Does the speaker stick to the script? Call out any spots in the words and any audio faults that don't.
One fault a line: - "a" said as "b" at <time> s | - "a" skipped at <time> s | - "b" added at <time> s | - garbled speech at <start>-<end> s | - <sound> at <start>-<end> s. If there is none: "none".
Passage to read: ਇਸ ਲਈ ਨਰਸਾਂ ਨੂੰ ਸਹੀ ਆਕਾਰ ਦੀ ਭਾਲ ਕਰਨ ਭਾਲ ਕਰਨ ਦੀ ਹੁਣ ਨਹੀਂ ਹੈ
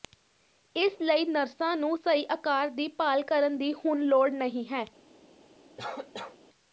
- "ਭਾਲ ਕਰਨ" skipped at 3.6 s
- "ਲੋੜ" added at 4.0 s
- cough at 5.8-6.4 s